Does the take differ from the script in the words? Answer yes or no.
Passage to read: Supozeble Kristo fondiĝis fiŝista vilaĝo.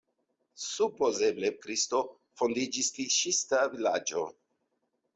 no